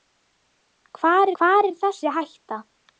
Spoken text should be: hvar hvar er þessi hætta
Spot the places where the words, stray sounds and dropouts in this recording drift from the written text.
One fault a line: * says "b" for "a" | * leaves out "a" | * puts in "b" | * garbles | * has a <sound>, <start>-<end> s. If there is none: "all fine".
all fine